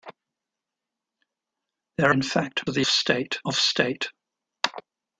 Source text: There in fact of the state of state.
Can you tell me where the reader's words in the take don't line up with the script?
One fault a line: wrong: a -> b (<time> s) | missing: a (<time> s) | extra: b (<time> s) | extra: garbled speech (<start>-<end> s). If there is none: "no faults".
no faults